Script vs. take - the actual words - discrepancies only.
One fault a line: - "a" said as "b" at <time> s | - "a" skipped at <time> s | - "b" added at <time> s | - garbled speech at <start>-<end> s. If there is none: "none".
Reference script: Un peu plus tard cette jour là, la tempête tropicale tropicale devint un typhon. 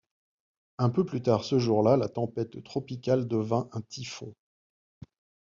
- "cette" said as "ce" at 1.4 s
- "tropicale" skipped at 3.3 s